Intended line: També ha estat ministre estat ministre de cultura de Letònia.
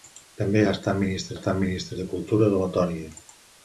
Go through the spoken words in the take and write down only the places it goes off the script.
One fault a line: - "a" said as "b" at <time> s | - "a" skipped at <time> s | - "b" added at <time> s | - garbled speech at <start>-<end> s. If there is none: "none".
none